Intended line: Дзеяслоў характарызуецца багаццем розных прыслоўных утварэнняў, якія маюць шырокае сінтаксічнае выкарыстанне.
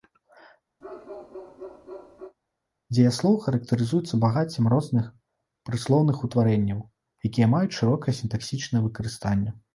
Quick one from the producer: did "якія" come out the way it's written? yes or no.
yes